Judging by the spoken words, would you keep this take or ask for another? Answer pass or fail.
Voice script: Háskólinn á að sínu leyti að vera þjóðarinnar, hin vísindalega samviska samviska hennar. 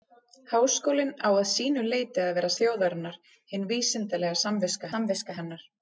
pass